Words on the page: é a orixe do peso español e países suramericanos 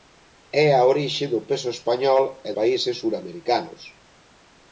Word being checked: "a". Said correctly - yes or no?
yes